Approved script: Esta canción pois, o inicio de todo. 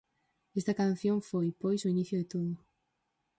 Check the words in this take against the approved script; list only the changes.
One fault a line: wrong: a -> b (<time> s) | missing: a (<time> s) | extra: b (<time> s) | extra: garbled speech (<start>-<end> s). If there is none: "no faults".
extra: foi (1.3 s)